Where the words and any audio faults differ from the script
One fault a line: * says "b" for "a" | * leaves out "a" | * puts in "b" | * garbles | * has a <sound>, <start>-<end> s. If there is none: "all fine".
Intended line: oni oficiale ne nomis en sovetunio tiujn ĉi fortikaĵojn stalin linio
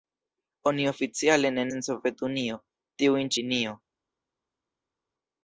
* leaves out "nomis"
* leaves out "ĉi fortikaĵojn stalin"